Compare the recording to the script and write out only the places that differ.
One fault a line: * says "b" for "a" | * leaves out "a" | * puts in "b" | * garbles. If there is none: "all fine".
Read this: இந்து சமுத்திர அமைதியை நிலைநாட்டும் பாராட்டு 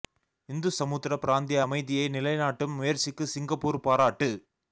* puts in "பிராந்திய"
* puts in "முயற்சிக்கு சிங்கப்பூர்"